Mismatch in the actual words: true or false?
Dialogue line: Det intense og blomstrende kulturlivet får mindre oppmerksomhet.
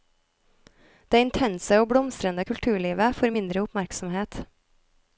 false